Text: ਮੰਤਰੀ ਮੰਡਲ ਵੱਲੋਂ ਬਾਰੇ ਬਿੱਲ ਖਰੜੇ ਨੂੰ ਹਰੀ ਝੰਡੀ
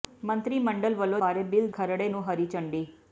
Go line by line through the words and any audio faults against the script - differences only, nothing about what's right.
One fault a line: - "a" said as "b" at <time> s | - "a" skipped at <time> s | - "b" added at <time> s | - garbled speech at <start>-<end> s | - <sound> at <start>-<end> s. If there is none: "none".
none